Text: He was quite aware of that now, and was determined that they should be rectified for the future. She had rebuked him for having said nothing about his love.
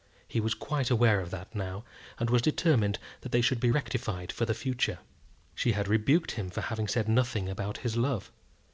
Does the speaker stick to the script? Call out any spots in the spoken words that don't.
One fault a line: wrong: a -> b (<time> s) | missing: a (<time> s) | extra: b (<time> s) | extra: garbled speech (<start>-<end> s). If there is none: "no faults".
no faults